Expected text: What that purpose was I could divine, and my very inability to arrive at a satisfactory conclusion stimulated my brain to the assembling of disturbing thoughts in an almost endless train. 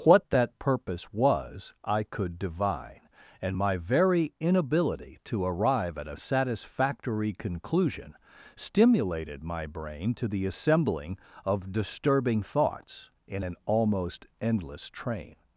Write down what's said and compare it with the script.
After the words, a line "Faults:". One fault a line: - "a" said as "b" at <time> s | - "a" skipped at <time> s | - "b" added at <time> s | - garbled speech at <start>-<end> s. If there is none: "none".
What that purpose was I could divine, and my very inability to arrive at a satisfactory conclusion stimulated my brain to the assembling of disturbing thoughts in an almost endless train.
Faults:
none